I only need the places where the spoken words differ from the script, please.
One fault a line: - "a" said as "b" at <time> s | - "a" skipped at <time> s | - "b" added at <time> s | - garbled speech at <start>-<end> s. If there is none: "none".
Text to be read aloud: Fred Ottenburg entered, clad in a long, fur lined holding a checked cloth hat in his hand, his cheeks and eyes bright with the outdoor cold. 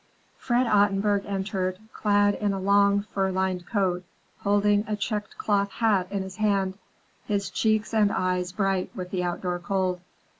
- "coat" added at 3.7 s